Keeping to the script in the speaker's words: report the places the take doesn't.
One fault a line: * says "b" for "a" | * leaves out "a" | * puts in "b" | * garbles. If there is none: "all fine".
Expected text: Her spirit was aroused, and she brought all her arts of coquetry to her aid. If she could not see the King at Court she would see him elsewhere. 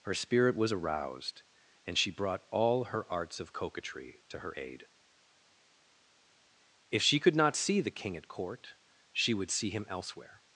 all fine